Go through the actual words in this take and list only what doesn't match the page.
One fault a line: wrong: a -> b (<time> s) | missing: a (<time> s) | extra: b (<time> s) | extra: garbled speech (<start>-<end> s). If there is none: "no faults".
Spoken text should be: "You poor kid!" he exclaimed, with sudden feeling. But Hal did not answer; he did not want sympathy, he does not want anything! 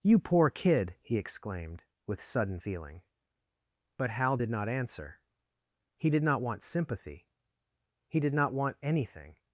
wrong: does -> did (8.2 s)